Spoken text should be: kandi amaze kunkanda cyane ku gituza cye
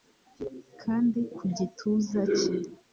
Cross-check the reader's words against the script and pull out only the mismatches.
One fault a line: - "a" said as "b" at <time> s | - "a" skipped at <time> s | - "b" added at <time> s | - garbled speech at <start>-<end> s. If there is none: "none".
- "amaze kunkanda cyane" skipped at 1.2 s